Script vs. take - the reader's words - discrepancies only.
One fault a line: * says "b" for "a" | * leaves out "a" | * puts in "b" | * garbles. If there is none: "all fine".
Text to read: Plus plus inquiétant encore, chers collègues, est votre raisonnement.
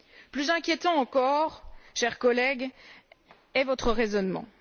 * leaves out "plus"